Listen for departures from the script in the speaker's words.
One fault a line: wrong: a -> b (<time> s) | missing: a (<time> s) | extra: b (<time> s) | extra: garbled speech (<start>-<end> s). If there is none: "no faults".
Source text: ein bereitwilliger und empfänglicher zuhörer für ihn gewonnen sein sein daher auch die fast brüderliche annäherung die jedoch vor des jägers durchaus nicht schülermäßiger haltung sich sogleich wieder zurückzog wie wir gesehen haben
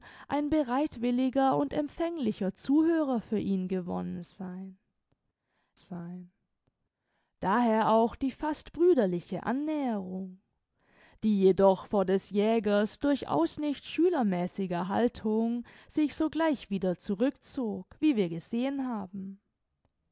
no faults